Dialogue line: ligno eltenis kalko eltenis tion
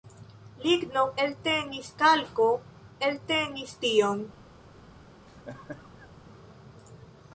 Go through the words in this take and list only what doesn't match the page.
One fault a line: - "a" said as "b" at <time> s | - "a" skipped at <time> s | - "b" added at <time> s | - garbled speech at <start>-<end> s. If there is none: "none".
none